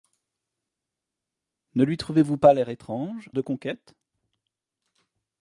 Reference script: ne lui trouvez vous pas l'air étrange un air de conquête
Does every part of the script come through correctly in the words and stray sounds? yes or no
no